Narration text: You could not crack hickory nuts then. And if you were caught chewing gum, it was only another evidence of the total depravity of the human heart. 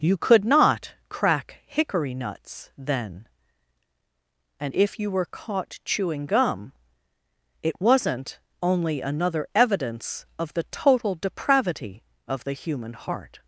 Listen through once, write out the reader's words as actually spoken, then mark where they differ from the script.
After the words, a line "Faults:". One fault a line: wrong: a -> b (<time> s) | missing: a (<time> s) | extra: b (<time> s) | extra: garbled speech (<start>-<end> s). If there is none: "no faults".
You could not crack hickory nuts then. And if you were caught chewing gum, it wasn't only another evidence of the total depravity of the human heart.
Faults:
wrong: was -> wasn't (7.8 s)